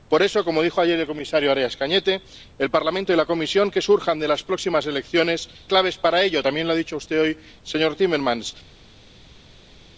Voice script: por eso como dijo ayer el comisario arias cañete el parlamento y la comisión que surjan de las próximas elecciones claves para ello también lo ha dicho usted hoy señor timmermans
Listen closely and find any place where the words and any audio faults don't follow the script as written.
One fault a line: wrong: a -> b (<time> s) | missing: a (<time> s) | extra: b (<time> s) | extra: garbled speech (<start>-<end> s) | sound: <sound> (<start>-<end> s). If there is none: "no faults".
no faults